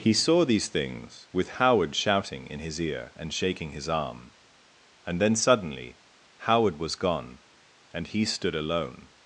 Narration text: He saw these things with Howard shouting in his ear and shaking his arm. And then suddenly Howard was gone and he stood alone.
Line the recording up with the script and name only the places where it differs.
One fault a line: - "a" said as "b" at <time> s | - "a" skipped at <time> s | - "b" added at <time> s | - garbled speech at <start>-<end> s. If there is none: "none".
none